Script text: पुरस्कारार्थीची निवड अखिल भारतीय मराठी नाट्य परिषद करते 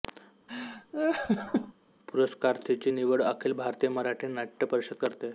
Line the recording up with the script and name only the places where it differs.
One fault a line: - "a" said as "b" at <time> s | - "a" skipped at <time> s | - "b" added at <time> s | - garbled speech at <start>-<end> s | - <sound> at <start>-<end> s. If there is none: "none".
- laugh at 0.5-1.7 s